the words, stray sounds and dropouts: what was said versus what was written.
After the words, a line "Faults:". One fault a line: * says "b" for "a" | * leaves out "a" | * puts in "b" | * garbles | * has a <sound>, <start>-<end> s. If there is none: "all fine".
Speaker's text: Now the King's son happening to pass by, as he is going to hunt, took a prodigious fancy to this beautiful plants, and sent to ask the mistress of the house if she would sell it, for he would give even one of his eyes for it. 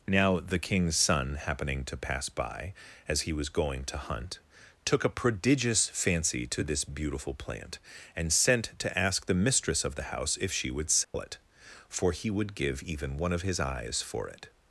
Now the King's son happening to pass by, as he was going to hunt, took a prodigious fancy to this beautiful plant, and sent to ask the mistress of the house if she would sell it, for he would give even one of his eyes for it.
Faults:
* says "was" for "is"
* says "plant" for "plants"
* has a dropout, 11.0-11.1 s